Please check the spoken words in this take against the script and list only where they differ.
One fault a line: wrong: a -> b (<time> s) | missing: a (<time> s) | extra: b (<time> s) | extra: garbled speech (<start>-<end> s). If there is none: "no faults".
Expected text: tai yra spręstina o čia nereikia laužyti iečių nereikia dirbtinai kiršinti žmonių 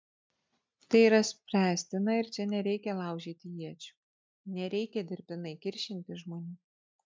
wrong: o -> ir (2.2 s)